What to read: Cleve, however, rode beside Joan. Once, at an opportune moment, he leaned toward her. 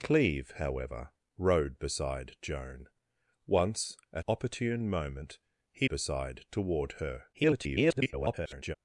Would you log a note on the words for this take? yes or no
yes